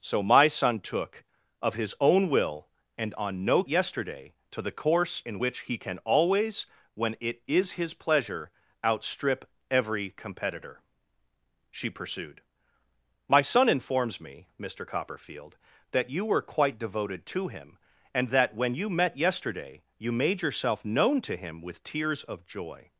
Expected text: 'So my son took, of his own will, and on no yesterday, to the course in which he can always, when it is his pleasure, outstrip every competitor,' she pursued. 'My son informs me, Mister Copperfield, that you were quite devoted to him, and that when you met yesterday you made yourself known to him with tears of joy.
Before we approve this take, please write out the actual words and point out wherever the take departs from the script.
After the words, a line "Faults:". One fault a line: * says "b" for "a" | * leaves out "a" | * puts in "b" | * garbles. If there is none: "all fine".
'So my son took, of his own will, and on no yesterday, to the course in which he can always, when it is his pleasure, outstrip every competitor,' she pursued. 'My son informs me, Mister Copperfield, that you were quite devoted to him, and that when you met yesterday you made yourself known to him with tears of joy.
Faults:
all fine